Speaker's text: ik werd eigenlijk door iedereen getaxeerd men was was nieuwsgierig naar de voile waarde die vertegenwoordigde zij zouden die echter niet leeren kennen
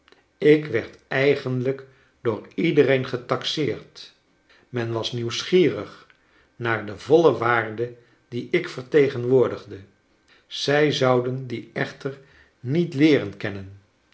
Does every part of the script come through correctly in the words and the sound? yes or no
no